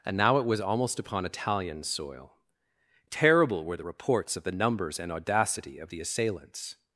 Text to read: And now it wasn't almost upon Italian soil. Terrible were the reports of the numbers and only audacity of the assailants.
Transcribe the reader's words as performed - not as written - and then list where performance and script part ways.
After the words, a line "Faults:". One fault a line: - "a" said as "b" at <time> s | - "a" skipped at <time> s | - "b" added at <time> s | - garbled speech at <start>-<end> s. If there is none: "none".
And now it was almost upon Italian soil. Terrible were the reports of the numbers and audacity of the assailants.
Faults:
- "wasn't" said as "was" at 0.5 s
- "only" skipped at 5.1 s